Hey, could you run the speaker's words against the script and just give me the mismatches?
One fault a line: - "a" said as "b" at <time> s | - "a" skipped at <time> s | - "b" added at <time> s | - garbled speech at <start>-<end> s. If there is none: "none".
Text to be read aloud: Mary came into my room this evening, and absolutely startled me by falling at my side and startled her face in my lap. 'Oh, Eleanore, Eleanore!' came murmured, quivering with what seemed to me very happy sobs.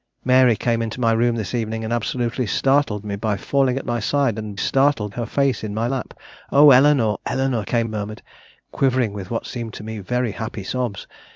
none